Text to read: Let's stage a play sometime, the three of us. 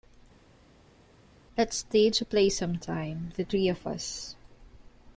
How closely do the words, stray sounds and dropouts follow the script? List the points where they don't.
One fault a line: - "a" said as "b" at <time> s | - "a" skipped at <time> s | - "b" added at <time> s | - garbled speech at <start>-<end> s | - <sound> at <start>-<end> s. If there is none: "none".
none